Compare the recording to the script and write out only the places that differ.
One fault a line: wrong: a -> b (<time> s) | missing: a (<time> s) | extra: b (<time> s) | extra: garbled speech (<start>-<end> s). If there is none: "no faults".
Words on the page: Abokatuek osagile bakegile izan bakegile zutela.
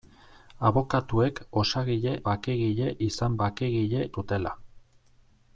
no faults